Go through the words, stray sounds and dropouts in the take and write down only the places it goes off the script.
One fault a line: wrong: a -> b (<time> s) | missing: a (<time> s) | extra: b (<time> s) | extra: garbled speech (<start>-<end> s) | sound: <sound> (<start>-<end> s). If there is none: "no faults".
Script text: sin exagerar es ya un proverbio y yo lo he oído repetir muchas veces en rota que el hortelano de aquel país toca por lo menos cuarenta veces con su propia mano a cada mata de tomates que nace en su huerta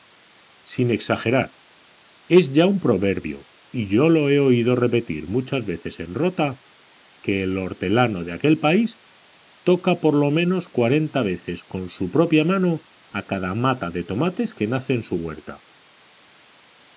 no faults